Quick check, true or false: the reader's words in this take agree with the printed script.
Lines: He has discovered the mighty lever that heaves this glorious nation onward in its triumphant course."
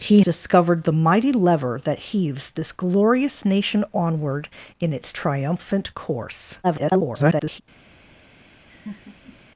false